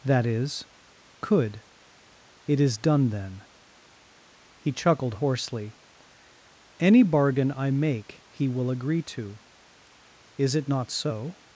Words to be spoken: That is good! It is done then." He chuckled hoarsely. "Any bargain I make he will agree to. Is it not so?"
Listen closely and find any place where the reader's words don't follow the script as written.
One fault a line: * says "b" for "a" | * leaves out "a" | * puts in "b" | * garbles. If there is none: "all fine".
* says "could" for "good"